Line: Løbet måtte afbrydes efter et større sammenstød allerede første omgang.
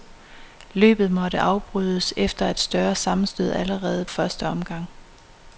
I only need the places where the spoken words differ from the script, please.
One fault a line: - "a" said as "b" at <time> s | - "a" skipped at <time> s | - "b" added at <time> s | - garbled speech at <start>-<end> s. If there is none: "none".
none